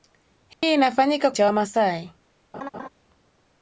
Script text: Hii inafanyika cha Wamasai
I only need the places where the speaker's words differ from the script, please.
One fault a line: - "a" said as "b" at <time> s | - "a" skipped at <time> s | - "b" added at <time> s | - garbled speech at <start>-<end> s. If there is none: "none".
none